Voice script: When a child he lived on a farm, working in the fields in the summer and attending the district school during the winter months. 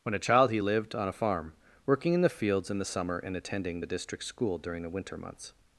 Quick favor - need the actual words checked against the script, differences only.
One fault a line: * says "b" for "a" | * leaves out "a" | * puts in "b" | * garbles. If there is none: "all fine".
all fine